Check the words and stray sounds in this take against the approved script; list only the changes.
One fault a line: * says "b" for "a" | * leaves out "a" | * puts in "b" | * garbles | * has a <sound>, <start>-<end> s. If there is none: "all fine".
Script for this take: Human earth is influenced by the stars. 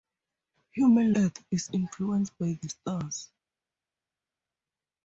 all fine